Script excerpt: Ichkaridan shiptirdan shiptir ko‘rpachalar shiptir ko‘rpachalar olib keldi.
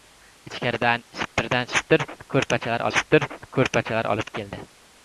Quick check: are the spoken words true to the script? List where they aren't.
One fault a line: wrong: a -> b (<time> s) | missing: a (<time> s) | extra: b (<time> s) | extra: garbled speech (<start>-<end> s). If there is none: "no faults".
no faults